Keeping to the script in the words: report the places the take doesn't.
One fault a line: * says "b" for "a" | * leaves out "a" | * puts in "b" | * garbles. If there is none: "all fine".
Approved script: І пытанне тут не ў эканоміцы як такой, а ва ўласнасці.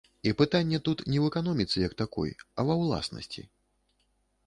all fine